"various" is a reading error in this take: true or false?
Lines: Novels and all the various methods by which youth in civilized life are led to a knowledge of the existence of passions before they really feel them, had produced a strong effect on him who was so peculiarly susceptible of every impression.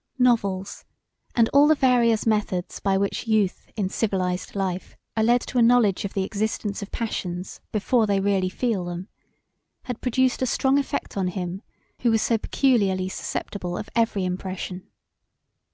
false